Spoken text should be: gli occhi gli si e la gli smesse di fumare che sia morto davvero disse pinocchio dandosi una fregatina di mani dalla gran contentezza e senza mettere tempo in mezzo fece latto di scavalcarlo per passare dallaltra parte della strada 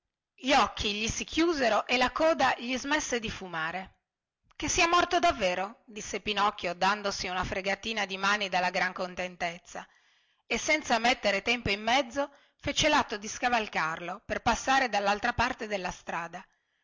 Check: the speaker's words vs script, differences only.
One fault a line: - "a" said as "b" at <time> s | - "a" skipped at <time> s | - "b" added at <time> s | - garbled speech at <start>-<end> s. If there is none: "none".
- "chiusero" added at 1.2 s
- "coda" added at 2.1 s